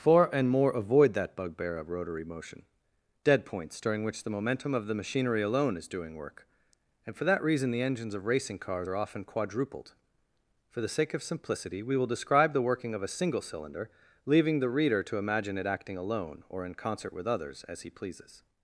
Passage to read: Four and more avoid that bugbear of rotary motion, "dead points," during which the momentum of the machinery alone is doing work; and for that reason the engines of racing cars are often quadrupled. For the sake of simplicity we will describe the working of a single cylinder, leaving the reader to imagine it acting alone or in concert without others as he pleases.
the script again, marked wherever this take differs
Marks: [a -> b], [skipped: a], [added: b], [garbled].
Four and more avoid that bugbear of rotary motion, "dead points," during which the momentum of the machinery alone is doing work; and for that reason the engines of racing cars are often quadrupled. For the sake of simplicity we will describe the working of a single cylinder, leaving the reader to imagine it acting alone or in concert [without -> with] others as he pleases.